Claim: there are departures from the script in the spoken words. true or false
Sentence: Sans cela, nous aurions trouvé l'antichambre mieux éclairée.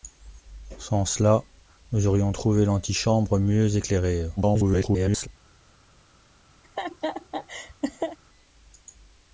true